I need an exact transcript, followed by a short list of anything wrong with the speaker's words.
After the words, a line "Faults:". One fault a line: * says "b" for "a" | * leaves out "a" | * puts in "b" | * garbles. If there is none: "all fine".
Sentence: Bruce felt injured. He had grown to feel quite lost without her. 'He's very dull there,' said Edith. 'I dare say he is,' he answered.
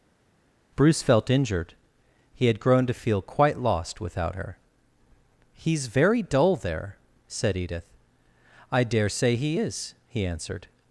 Bruce felt injured. He had grown to feel quite lost without her. 'He's very dull there,' said Edith. 'I dare say he is,' he answered.
Faults:
all fine